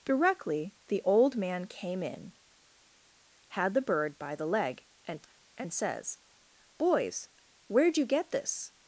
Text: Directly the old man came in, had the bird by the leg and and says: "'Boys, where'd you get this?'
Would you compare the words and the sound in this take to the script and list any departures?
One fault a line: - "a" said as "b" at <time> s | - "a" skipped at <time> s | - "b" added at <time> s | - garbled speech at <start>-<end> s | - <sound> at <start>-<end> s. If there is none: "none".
none